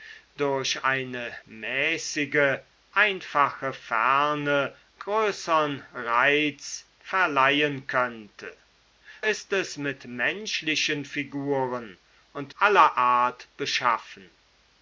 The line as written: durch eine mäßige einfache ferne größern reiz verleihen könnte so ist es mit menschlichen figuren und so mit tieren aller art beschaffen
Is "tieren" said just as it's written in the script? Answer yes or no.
no